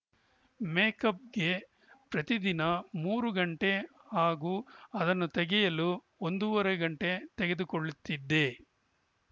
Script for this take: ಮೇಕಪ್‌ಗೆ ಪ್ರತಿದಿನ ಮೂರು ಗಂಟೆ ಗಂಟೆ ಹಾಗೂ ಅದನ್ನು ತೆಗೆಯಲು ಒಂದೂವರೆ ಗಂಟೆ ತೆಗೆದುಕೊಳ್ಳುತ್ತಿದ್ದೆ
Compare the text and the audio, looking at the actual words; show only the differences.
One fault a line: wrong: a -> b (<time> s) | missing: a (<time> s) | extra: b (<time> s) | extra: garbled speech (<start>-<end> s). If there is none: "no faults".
missing: ಗಂಟೆ (3.7 s)